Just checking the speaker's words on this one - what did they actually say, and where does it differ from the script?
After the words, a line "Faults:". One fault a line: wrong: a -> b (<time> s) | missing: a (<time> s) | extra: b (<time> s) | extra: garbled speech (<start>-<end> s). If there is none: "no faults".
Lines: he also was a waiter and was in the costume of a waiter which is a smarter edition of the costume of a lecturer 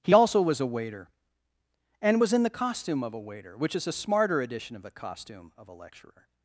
he also was a waiter and was in the costume of a waiter which is a smarter edition of the costume of a lecturer
Faults:
no faults